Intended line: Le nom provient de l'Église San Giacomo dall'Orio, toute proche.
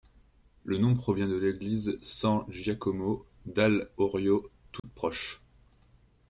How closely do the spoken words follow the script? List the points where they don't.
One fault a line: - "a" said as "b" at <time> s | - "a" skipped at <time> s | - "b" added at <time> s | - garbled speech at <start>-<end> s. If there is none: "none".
none